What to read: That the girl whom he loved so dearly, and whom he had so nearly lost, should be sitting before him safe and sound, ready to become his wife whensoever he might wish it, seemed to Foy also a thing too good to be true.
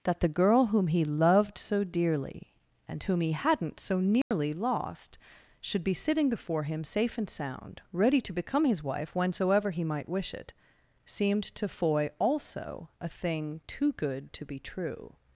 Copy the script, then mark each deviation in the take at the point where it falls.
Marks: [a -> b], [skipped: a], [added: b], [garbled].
That the girl whom he loved so dearly, and whom he [had -> hadn't] so nearly lost, should be sitting before him safe and sound, ready to become his wife whensoever he might wish it, seemed to Foy also a thing too good to be true.